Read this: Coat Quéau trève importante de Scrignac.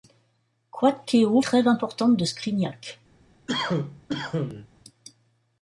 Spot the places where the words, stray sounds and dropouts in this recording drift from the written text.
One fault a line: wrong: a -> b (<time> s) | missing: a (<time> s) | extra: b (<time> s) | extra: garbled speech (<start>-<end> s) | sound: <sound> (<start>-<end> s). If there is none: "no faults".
sound: cough (3.5-4.7 s)